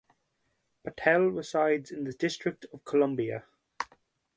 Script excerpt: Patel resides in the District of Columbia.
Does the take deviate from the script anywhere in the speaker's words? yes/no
no